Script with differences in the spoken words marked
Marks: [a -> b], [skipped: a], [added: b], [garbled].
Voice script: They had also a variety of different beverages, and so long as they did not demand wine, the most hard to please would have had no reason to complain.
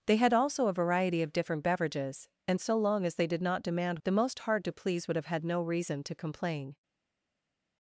They had also a variety of different beverages, and so long as they did not demand [skipped: wine,] the most hard to please would have had no reason to complain.